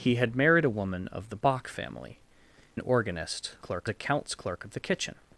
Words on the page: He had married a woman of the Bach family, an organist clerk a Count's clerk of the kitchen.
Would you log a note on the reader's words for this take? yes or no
no